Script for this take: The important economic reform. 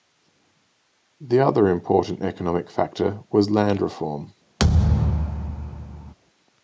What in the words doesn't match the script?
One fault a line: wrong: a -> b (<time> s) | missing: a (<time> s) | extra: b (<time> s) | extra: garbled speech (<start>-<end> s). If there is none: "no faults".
extra: other (1.4 s)
extra: factor was land (2.7 s)